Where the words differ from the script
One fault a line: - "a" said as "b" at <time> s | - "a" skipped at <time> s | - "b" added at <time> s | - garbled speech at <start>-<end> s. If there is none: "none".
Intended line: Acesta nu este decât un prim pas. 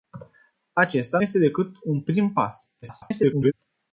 - "nu" skipped at 1.2 s
- garbled speech at 2.8-3.5 s